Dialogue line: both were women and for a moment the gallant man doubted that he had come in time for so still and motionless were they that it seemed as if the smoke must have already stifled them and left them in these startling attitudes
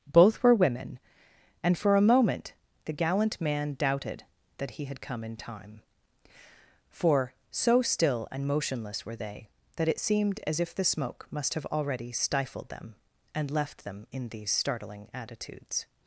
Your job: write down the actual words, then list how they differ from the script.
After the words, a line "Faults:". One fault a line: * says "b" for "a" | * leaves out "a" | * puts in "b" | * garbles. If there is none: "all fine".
both were women and for a moment the gallant man doubted that he had come in time for so still and motionless were they that it seemed as if the smoke must have already stifled them and left them in these startling attitudes
Faults:
all fine